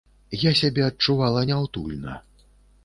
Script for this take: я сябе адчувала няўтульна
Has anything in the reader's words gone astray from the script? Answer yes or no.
no